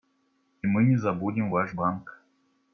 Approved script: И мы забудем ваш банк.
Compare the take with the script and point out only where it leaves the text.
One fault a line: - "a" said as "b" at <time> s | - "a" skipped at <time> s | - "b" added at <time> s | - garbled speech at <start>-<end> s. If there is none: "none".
- "не" added at 0.8 s